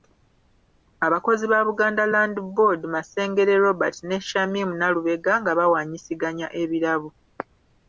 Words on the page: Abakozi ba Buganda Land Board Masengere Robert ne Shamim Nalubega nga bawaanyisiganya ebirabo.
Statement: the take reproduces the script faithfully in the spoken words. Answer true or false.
true